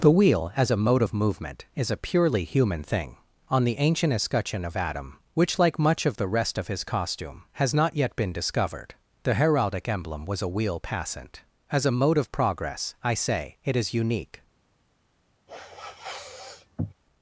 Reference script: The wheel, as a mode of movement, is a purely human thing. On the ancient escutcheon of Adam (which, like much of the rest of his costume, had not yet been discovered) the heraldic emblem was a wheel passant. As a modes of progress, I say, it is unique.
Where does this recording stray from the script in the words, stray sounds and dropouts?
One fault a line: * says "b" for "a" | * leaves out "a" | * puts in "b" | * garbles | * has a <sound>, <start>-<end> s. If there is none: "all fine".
* says "has" for "had"
* says "mode" for "modes"
* has a sniff, 15.5-16.9 s